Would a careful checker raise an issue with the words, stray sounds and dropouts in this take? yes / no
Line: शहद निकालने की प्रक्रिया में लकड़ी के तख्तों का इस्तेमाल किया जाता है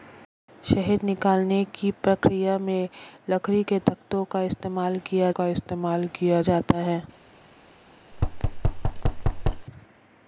yes